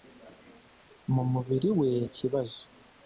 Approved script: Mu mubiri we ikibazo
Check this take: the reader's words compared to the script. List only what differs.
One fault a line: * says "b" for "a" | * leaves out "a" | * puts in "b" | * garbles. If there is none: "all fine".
all fine